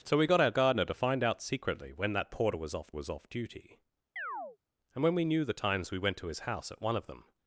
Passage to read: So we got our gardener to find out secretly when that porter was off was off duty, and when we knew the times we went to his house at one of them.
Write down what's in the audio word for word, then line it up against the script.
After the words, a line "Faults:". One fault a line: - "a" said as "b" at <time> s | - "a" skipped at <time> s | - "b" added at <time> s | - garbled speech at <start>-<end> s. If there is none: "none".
So we got our gardener to find out secretly when that porter was off was off duty, and when we knew the times we went to his house at one of them.
Faults:
none